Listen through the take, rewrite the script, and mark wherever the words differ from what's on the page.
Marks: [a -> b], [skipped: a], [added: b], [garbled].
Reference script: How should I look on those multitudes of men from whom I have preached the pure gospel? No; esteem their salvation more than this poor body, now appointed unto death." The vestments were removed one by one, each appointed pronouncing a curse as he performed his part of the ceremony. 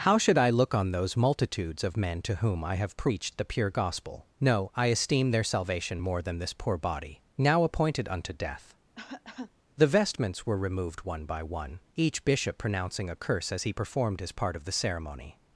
How should I look on those multitudes of men [from -> to] whom I have preached the pure gospel? No; [added: I] esteem their salvation more than this poor body, now appointed unto death." The vestments were removed one by one, each [appointed -> bishop] pronouncing a curse as he performed his part of the ceremony.